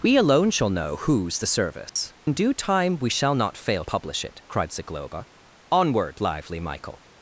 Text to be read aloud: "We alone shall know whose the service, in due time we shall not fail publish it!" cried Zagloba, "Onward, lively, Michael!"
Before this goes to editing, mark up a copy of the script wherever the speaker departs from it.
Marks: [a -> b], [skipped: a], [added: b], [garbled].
"We alone shall know whose the service, in due time we shall not fail publish it!" cried Zagloba, "Onward, lively, Michael!"